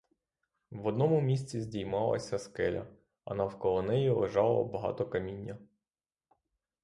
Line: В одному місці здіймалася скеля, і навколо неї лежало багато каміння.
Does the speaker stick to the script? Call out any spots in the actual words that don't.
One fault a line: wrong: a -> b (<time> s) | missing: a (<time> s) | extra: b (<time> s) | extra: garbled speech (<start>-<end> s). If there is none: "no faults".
wrong: і -> а (3.2 s)